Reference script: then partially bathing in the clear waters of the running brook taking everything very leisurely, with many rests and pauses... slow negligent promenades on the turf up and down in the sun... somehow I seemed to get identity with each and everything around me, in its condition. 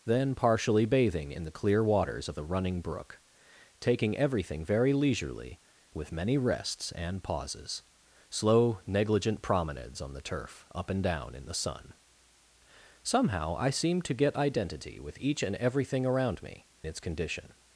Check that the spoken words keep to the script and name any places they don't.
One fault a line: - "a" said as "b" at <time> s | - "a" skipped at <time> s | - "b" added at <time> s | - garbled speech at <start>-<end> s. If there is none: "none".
- "in" skipped at 16.7 s